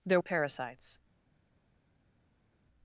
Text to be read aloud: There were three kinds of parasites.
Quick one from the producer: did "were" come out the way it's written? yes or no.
no